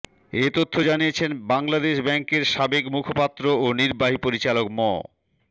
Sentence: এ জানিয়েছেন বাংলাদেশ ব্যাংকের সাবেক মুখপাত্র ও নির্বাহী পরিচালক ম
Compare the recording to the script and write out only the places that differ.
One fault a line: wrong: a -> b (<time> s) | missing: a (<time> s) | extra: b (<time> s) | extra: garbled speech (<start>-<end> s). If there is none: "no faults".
extra: তথ্য (0.6 s)